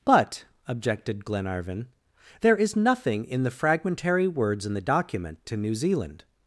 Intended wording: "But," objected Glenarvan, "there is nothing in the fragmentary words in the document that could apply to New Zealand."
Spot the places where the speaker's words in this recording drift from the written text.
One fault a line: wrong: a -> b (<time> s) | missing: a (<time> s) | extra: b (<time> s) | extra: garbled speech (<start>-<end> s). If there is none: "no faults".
missing: that could apply (5.4 s)